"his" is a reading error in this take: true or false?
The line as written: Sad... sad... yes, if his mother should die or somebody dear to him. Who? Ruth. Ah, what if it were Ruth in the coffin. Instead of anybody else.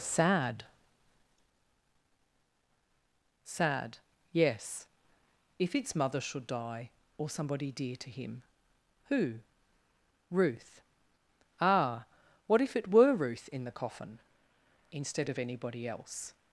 true